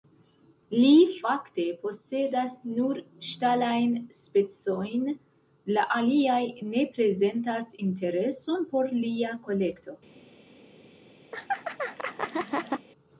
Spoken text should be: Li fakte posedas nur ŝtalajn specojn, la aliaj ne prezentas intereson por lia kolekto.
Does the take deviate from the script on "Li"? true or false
false